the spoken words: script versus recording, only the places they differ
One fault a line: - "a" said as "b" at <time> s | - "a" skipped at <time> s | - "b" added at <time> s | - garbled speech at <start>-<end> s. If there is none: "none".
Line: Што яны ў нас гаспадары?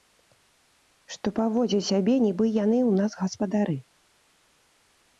- "паводзяць сябе нібы" added at 1.4 s